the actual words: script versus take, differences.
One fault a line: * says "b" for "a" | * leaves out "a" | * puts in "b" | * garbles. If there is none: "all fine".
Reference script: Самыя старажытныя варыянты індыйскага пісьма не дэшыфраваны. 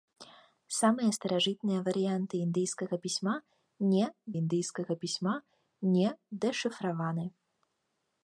* puts in "індыйскага пісьма не"